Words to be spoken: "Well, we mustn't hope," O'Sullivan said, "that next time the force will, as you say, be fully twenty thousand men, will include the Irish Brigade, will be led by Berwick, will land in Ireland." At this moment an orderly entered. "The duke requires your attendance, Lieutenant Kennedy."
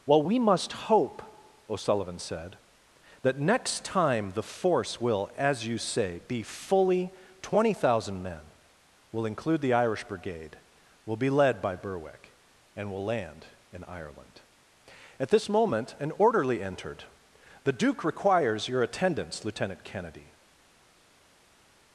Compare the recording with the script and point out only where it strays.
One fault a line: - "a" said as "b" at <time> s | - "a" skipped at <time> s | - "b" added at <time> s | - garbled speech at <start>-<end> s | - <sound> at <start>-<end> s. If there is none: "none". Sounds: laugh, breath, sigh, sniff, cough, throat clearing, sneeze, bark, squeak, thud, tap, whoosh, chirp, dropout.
- "mustn't" said as "must" at 0.4 s
- "and" added at 12.8 s